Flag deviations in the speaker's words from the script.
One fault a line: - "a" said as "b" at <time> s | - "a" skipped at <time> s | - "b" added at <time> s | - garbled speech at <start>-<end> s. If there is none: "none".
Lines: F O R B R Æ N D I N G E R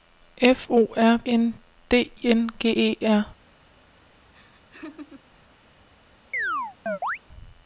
- "B R Æ" skipped at 1.2 s
- "I" skipped at 2.1 s